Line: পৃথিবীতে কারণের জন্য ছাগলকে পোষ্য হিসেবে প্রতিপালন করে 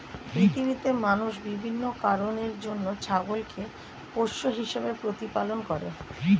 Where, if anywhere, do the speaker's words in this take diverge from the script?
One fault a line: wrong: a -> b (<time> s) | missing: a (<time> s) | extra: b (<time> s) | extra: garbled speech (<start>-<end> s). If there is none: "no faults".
extra: মানুষ বিভিন্ন (1.0 s)